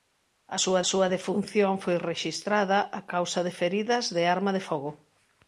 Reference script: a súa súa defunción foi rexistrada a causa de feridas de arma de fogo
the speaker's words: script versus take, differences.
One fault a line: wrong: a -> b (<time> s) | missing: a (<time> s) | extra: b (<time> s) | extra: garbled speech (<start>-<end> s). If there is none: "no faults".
no faults